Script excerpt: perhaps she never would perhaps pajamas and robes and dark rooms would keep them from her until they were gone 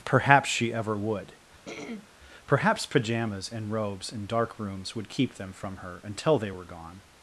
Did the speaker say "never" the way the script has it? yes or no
no